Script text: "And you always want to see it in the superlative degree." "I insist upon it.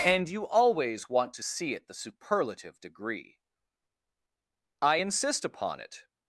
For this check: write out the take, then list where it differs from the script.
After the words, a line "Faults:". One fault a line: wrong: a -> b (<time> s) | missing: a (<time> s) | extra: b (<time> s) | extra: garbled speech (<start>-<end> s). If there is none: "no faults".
"And you always want to see it the superlative degree." "I insist upon it.
Faults:
missing: in (1.9 s)